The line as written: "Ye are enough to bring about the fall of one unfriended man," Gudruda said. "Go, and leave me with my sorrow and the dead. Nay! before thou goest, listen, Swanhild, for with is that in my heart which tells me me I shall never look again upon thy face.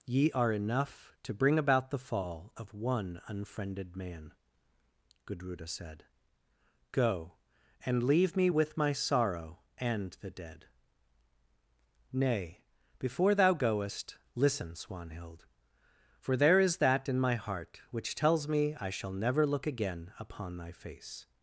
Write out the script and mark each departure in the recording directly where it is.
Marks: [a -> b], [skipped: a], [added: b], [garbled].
"Ye are enough to bring about the fall of one unfriended man," Gudruda said. "Go, and leave me with my sorrow and the dead. Nay! before thou goest, listen, Swanhild, for [with -> there] is that in my heart which tells me [skipped: me] I shall never look again upon thy face.